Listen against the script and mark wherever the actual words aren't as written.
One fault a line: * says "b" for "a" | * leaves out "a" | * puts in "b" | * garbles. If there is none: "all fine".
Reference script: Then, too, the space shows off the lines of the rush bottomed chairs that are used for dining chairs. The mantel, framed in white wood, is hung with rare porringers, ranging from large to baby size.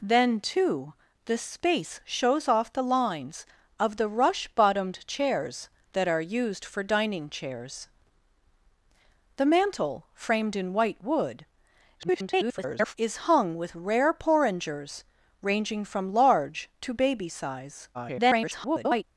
* garbles
* garbles